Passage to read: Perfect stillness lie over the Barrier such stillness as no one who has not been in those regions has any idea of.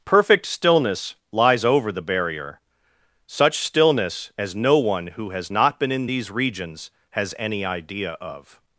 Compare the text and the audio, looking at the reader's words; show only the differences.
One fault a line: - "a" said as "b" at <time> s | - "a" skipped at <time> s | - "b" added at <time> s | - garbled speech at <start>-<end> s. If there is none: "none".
- "lie" said as "lies" at 1.3 s
- "those" said as "these" at 6.1 s